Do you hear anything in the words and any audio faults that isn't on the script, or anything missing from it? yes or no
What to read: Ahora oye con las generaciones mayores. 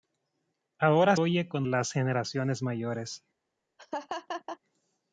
yes